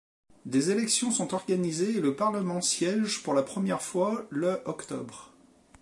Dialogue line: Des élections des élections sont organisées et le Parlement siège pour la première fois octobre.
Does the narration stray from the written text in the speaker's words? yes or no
yes